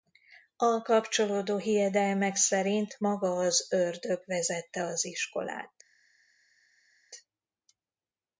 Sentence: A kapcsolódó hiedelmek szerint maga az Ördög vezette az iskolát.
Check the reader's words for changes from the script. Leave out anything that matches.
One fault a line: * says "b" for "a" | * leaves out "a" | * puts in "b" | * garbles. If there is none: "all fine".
all fine